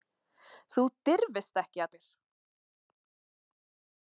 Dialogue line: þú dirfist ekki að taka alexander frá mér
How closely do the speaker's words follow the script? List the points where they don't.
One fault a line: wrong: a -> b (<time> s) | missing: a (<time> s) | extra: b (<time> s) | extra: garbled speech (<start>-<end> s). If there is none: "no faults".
missing: taka alexander frá (1.9 s)